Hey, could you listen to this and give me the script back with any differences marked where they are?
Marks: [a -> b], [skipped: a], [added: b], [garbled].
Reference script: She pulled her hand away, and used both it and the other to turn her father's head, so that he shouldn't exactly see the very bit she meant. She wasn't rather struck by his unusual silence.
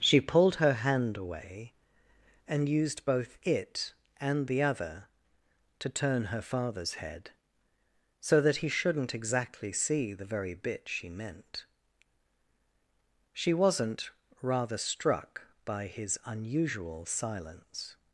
She pulled her hand away, and used both it and the other to turn her father's head, so that he shouldn't exactly see the very bit she meant. She wasn't rather struck by his unusual silence.